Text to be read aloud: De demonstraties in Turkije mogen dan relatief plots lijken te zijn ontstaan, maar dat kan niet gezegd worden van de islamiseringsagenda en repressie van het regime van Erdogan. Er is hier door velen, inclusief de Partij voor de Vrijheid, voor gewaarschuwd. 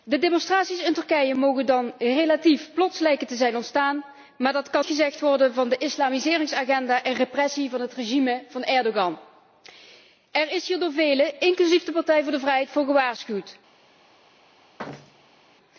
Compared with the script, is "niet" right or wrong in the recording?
wrong